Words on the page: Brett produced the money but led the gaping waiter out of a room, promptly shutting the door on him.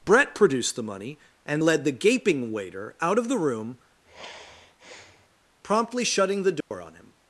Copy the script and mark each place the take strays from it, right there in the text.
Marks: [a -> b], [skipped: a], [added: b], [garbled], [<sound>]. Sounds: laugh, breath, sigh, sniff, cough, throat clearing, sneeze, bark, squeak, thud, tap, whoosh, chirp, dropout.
Brett produced the money [but -> and] led the gaping waiter out of [a -> the] room, [sigh] promptly shutting the door [dropout] on him.